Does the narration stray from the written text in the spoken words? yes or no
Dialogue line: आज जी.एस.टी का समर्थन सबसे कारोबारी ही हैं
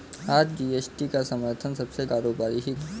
no